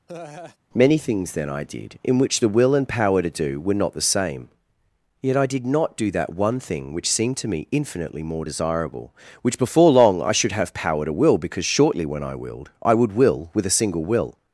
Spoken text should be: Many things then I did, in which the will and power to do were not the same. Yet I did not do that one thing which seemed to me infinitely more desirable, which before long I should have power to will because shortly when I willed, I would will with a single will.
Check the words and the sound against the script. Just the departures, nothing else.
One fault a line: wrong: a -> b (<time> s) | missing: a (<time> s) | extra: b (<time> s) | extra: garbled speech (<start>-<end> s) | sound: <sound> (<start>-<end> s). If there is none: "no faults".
sound: laugh (0.1-0.6 s)